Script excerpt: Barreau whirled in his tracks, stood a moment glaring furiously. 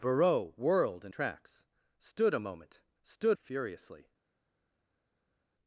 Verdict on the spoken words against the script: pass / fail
fail